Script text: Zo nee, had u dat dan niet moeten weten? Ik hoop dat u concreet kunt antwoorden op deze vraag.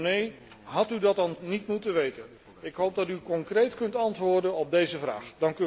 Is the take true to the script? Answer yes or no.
yes